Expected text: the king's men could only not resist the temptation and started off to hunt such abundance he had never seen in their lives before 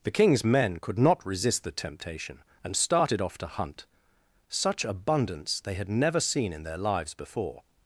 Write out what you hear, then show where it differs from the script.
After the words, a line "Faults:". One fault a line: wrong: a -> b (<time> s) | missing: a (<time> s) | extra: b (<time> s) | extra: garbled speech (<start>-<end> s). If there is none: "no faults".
the king's men could not resist the temptation and started off to hunt such abundance they had never seen in their lives before
Faults:
missing: only (1.0 s)
wrong: he -> they (5.6 s)